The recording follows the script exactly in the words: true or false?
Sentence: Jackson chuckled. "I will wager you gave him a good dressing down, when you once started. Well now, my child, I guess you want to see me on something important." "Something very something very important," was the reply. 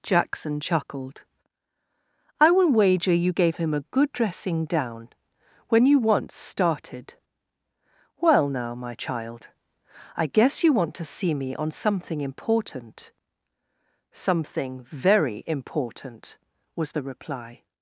false